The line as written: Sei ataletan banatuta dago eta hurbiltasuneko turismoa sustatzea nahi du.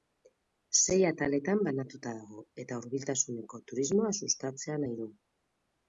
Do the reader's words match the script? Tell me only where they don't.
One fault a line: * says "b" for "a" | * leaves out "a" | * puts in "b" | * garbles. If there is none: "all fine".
all fine